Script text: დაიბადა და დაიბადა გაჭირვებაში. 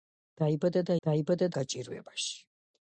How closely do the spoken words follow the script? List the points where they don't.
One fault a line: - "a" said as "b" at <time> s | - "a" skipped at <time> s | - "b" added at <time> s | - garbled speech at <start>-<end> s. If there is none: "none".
none